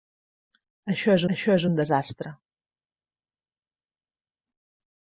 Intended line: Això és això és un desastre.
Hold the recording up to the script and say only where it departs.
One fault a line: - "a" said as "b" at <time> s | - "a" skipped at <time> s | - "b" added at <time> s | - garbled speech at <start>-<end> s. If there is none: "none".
none